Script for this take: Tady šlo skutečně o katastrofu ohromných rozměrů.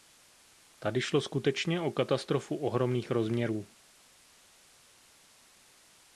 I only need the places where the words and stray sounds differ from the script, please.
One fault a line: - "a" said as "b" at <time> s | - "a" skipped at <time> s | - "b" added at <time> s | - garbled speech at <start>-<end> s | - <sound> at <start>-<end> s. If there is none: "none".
none